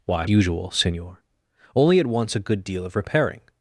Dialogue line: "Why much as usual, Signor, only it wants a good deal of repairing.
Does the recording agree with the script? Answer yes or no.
no